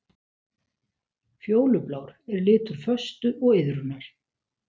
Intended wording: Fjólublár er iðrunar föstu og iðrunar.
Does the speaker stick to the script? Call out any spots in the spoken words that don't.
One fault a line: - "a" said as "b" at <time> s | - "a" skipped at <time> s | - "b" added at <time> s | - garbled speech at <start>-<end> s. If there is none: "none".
- "iðrunar" said as "litur" at 2.5 s